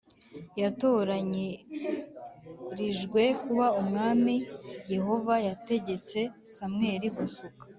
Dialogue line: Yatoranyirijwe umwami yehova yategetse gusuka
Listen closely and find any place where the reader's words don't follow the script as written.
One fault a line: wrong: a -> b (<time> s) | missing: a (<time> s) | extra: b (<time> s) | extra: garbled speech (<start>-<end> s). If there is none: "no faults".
extra: kuba (3.4 s)
extra: samweli (6.5 s)